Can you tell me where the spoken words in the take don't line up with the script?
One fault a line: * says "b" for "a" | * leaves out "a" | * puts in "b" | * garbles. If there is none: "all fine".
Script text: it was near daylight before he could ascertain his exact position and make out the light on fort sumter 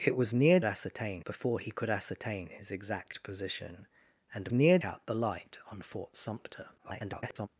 * says "ascertain" for "daylight"
* says "near" for "make"
* garbles